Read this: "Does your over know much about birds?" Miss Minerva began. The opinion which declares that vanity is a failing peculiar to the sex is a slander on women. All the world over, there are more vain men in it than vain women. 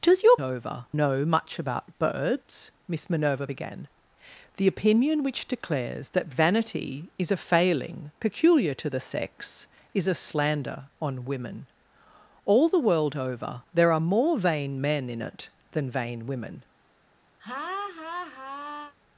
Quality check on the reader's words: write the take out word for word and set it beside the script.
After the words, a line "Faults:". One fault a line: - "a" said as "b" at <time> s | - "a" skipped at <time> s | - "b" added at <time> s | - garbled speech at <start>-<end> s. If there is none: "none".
"Does your over know much about birds?" Miss Minerva began. The opinion which declares that vanity is a failing peculiar to the sex is a slander on women. All the world over, there are more vain men in it than vain women.
Faults:
none